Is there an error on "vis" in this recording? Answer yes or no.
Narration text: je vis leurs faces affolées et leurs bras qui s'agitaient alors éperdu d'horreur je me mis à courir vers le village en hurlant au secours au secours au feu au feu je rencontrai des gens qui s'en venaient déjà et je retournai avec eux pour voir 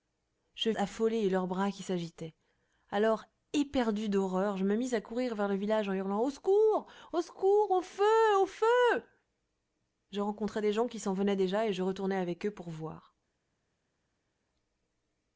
yes